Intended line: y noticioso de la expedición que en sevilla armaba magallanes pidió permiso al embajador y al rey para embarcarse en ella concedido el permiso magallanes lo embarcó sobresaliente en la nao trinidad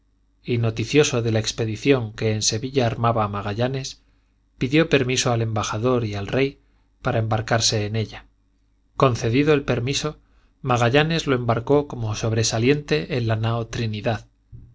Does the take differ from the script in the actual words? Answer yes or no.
yes